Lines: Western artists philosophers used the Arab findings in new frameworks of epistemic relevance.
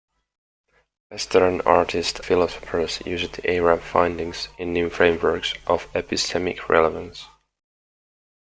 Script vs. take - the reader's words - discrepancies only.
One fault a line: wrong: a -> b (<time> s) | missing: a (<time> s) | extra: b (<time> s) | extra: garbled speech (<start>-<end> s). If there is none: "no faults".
no faults